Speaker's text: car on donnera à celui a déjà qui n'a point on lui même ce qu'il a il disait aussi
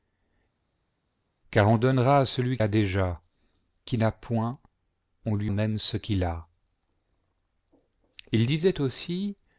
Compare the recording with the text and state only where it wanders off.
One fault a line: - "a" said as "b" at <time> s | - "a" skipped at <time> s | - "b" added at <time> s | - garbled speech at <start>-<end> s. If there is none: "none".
none